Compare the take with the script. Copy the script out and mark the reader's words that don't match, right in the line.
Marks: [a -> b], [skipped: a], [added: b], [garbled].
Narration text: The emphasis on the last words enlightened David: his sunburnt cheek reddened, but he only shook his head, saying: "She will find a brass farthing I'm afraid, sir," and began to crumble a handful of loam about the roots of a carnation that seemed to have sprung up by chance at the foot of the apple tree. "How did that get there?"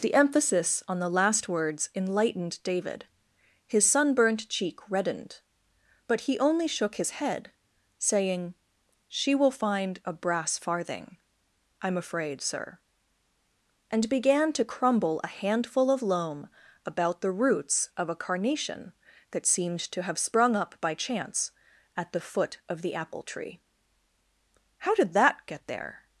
The emphasis on the last words enlightened David: his sunburnt cheek reddened, but he only shook his head, saying: "She will find a brass farthing I'm afraid, sir," and began to crumble a handful of loam about the roots of a carnation that seemed to have sprung up by chance at the foot of the apple tree. "How did that get there?"